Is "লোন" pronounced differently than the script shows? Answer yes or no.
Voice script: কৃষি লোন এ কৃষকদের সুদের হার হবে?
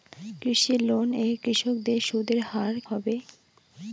no